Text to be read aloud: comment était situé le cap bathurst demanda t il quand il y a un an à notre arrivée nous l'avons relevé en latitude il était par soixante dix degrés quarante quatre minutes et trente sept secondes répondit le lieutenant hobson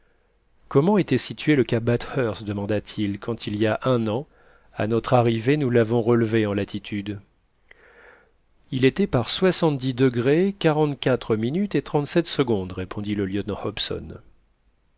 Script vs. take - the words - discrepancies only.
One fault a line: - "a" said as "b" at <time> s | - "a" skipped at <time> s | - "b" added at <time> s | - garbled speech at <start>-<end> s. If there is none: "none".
none